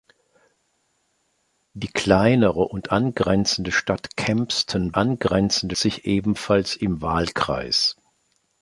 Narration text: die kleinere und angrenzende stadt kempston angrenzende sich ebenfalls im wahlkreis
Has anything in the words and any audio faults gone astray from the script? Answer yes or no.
no